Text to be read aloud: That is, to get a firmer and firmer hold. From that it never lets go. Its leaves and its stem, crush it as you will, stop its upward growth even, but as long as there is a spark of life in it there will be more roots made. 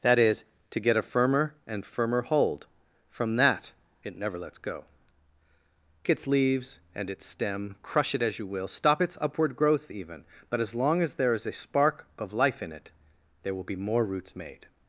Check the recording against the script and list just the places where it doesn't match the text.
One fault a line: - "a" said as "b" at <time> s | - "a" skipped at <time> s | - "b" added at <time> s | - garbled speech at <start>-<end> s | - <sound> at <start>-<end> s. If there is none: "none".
none